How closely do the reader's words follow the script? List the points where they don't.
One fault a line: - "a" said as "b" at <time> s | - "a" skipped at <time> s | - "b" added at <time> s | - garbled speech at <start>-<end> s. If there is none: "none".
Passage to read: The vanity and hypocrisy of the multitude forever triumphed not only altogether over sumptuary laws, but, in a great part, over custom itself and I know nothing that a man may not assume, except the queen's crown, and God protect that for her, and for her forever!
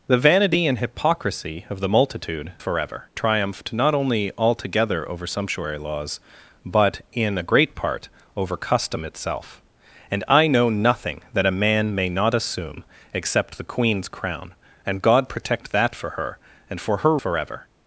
none